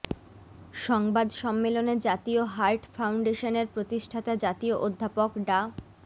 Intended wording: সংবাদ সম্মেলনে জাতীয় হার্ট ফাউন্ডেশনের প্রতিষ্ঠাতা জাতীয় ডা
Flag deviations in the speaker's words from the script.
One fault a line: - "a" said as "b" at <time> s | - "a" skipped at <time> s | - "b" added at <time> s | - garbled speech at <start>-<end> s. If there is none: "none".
- "অধ্যাপক" added at 4.8 s